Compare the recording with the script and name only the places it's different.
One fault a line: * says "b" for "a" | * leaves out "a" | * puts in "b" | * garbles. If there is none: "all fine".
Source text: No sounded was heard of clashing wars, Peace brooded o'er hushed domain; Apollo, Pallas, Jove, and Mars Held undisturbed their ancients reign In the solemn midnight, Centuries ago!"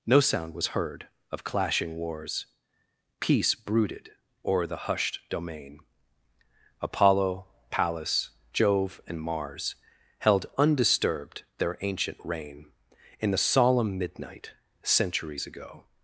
* says "sound" for "sounded"
* puts in "the"
* says "ancient" for "ancients"